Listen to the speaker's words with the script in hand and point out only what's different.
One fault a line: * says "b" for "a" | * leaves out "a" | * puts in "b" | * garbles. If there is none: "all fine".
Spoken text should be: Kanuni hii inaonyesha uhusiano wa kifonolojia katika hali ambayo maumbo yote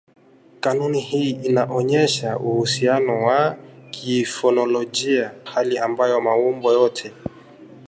* leaves out "katika"